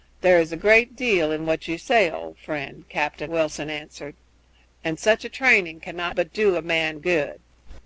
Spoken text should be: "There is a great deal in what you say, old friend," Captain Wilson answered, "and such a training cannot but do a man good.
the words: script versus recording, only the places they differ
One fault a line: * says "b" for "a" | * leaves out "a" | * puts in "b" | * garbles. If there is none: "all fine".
all fine